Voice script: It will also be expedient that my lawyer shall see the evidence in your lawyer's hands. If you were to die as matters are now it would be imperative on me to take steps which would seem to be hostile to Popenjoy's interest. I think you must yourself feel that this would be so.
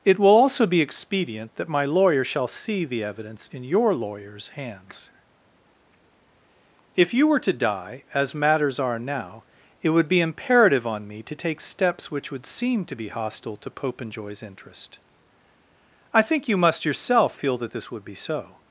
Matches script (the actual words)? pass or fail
pass